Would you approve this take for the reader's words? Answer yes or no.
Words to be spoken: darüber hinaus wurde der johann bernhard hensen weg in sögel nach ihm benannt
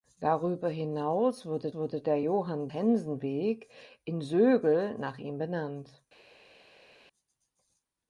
no